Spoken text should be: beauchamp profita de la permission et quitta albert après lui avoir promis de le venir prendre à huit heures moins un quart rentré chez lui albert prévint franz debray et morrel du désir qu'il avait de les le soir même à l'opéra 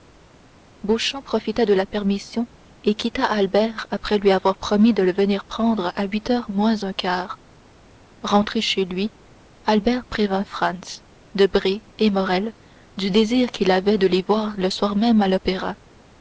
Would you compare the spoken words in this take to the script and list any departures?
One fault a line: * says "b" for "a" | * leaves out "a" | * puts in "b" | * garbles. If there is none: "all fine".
* puts in "voir"